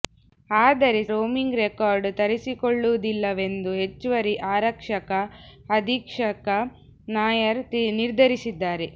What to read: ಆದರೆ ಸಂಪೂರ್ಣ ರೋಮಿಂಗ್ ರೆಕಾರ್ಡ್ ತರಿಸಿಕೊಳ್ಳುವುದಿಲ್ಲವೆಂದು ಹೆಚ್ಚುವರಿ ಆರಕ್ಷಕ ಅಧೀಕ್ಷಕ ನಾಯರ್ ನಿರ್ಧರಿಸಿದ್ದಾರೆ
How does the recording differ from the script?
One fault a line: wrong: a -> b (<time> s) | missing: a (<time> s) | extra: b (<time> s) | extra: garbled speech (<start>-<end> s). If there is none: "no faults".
missing: ಸಂಪೂರ್ಣ (1.0 s)